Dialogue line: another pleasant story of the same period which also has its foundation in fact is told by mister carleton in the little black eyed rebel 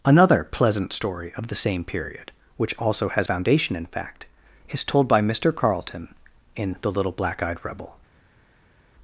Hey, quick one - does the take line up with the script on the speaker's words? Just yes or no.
no